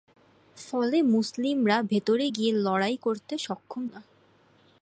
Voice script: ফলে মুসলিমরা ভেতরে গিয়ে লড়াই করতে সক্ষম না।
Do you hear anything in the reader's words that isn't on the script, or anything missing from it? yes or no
no